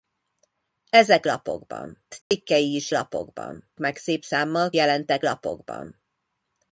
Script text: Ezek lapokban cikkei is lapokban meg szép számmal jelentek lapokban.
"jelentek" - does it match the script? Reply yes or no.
yes